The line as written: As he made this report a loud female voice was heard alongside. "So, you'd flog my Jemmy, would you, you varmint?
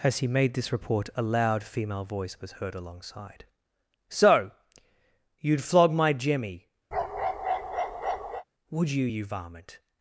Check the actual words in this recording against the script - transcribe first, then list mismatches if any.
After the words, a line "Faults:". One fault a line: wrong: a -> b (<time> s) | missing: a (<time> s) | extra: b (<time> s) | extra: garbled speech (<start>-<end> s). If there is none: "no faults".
As he made this report a loud female voice was heard alongside. "So, you'd flog my Jemmy, would you, you varmint?
Faults:
no faults